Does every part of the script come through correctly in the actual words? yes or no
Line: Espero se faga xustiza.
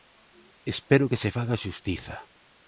no